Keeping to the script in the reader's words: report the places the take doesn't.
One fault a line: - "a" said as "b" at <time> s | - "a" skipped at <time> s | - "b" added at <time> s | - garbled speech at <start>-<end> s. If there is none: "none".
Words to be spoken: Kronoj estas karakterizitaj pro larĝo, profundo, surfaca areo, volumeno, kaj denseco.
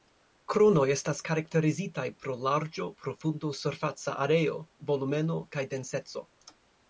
none